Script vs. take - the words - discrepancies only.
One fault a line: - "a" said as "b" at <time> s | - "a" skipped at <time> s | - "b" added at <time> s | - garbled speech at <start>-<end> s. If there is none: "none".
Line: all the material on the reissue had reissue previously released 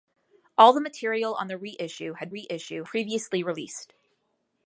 none